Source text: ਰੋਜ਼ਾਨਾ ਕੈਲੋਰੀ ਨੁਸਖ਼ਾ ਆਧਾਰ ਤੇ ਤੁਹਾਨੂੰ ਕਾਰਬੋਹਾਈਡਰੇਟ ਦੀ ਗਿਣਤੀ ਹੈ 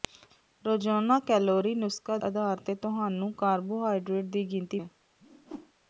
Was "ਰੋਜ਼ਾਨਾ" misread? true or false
false